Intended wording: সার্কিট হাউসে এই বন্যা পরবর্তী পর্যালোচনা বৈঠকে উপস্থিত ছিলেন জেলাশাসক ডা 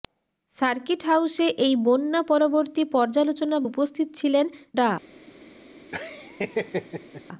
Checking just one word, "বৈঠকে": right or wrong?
wrong